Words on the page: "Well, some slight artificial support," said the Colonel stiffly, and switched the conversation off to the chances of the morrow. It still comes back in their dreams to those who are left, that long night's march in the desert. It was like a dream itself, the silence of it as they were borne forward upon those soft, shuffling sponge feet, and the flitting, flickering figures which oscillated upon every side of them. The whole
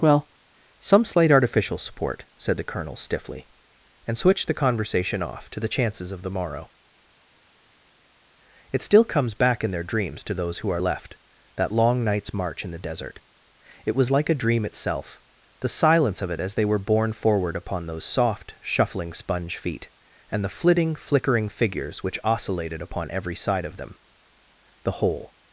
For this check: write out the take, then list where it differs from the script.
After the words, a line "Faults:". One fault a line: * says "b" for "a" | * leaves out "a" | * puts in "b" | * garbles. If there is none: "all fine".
"Well, some slight artificial support," said the Colonel stiffly, and switched the conversation off to the chances of the morrow. It still comes back in their dreams to those who are left, that long night's march in the desert. It was like a dream itself, the silence of it as they were borne forward upon those soft, shuffling sponge feet, and the flitting, flickering figures which oscillated upon every side of them. The whole
Faults:
all fine